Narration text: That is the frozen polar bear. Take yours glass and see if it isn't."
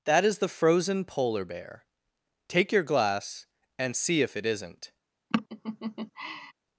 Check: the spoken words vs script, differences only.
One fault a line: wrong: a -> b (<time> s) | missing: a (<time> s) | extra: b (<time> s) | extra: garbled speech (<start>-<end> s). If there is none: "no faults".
wrong: yours -> your (2.7 s)